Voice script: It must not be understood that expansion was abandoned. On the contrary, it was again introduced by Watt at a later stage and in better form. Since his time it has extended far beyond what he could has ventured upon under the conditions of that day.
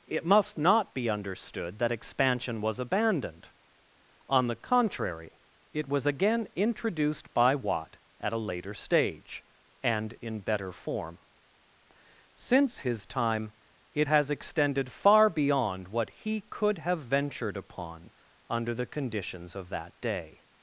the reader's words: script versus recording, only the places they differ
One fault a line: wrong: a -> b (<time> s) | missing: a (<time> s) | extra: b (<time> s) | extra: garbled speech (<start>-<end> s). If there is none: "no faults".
wrong: has -> have (16.8 s)